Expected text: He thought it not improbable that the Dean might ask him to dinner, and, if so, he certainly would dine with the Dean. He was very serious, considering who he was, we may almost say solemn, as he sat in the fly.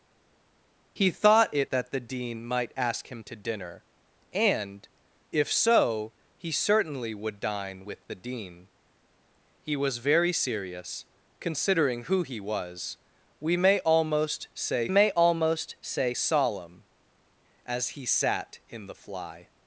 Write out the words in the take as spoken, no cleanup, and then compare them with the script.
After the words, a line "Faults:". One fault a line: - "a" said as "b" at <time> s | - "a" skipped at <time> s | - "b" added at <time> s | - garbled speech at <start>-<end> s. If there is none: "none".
He thought it that the Dean might ask him to dinner, and, if so, he certainly would dine with the Dean. He was very serious, considering who he was, we may almost say may almost say solemn, as he sat in the fly.
Faults:
- "not improbable" skipped at 1.7 s
- "may almost say" added at 14.9 s